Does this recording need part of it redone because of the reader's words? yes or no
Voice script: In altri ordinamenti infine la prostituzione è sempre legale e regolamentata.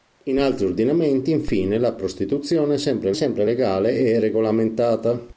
yes